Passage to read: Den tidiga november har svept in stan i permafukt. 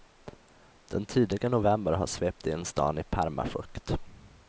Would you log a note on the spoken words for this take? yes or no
no